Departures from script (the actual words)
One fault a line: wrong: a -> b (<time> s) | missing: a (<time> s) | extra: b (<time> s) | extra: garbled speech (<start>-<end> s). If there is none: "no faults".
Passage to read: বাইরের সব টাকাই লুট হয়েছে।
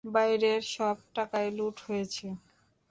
no faults